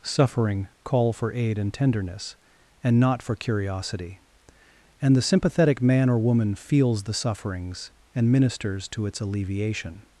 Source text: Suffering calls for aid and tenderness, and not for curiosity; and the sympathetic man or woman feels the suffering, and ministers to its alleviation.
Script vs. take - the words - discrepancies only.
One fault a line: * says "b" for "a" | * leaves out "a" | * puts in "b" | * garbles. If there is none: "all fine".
* says "call" for "calls"
* says "sufferings" for "suffering"